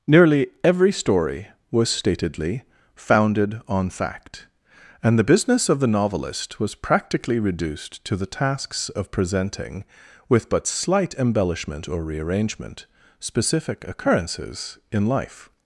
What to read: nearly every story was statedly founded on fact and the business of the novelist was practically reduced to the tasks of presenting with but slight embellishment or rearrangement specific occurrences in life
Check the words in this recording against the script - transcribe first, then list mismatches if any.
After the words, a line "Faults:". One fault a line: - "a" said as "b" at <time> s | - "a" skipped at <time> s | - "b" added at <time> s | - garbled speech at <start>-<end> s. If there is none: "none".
nearly every story was statedly founded on fact and the business of the novelist was practically reduced to the tasks of presenting with but slight embellishment or rearrangement specific occurrences in life
Faults:
none